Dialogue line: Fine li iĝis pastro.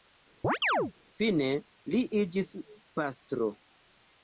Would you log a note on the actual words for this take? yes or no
no